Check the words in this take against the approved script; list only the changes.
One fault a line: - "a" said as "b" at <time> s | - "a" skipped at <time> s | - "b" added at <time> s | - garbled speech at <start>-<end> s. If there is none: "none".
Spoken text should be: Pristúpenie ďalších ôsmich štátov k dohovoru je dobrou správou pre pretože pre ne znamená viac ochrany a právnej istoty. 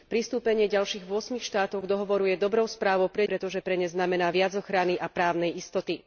none